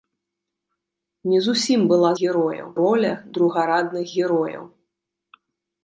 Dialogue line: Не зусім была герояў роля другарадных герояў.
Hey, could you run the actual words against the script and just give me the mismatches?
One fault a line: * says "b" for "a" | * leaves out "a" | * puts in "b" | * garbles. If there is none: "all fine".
all fine